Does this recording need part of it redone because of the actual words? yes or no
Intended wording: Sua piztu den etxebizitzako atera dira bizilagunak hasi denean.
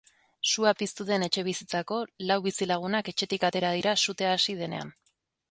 yes